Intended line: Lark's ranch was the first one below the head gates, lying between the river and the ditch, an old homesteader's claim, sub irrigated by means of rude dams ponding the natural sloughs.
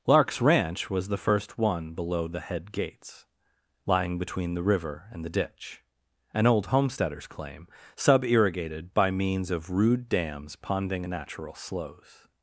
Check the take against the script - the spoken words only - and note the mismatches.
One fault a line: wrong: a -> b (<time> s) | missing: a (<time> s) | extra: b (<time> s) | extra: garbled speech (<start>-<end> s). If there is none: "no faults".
wrong: the -> a (11.1 s)